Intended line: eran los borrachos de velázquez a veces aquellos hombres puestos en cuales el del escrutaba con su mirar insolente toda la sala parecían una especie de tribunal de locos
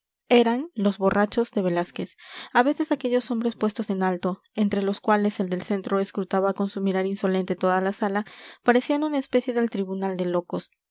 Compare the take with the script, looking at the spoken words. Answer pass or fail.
fail